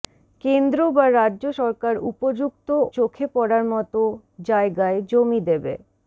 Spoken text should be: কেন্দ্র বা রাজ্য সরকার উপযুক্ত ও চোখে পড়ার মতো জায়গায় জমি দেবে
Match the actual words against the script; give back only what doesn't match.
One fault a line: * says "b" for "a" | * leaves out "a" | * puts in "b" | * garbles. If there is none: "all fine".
* leaves out "ও"